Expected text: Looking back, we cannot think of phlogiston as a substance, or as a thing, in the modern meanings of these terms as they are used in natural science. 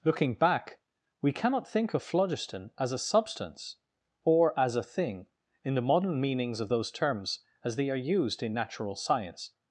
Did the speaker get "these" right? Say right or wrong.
wrong